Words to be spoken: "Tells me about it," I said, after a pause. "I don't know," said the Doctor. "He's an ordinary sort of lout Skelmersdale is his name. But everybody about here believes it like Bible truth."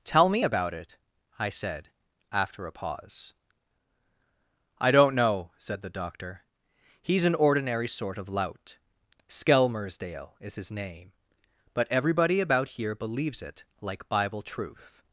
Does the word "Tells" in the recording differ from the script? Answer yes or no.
yes